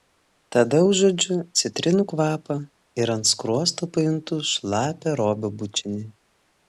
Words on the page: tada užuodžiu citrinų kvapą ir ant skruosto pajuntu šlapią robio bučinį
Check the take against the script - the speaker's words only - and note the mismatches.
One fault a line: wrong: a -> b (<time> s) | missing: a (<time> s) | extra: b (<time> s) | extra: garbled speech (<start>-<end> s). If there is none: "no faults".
no faults